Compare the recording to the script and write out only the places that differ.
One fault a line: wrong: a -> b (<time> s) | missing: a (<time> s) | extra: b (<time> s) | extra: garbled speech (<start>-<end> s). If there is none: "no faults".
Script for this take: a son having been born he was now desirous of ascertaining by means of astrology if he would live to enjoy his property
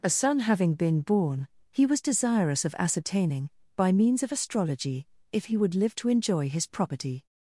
missing: now (2.0 s)